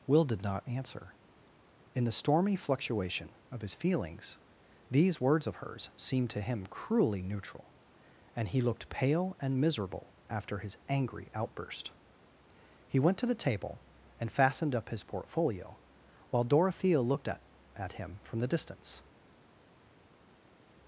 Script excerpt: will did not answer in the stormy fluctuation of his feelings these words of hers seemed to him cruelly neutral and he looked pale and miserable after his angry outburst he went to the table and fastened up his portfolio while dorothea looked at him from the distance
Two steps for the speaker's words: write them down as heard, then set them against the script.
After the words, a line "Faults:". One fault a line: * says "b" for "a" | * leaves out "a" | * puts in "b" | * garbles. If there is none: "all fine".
will did not answer in the stormy fluctuation of his feelings these words of hers seemed to him cruelly neutral and he looked pale and miserable after his angry outburst he went to the table and fastened up his portfolio while dorothea looked at at him from the distance
Faults:
* puts in "at"